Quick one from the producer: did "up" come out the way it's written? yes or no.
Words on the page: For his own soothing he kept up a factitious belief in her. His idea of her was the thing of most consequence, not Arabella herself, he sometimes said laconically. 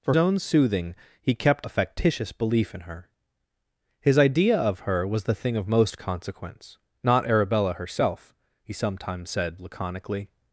no